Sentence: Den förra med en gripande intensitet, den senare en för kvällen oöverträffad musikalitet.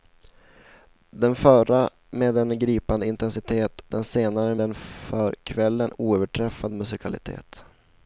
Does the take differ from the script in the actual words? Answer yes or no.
no